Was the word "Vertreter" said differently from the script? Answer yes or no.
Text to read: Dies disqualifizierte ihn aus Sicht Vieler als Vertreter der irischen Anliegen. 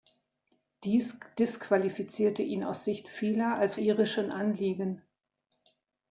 yes